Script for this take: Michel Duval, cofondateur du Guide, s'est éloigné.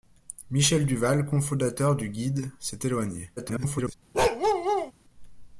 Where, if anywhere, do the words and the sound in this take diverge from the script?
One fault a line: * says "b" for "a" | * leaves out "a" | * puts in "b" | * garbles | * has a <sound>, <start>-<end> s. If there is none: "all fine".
* garbles
* has a bark, 4.1-4.9 s